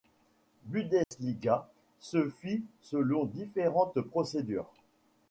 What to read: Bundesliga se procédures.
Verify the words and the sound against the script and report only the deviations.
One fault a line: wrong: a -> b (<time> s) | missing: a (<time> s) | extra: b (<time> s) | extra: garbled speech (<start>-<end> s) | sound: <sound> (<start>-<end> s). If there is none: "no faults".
sound: dropout (1.0-1.1 s)
extra: fit selon différentes (2.3 s)